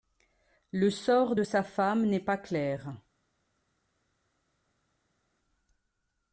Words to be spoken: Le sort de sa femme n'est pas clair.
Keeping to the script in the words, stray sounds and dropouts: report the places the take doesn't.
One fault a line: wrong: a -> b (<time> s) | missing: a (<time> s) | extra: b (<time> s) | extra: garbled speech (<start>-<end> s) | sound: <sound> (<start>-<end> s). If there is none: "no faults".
no faults